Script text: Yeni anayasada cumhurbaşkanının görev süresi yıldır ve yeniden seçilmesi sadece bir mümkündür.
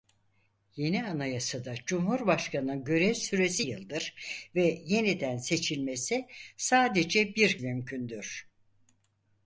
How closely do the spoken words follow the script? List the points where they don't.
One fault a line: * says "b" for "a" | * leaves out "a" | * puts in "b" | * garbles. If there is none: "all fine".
all fine